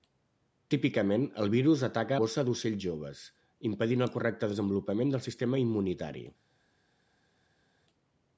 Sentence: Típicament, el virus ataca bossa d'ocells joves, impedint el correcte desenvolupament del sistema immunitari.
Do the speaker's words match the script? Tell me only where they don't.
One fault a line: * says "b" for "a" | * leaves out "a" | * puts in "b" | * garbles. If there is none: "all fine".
all fine